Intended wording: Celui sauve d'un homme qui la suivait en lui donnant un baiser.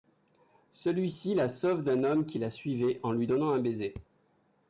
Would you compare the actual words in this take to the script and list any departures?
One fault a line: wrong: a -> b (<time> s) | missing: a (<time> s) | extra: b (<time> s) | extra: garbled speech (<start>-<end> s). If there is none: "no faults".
extra: ci la (1.1 s)